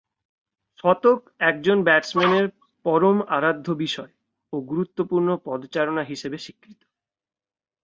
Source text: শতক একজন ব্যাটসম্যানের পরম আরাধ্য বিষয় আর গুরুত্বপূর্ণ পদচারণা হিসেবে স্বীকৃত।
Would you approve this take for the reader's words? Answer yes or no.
no